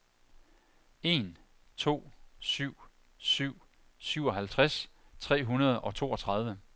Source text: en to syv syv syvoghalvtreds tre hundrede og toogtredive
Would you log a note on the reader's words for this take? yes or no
no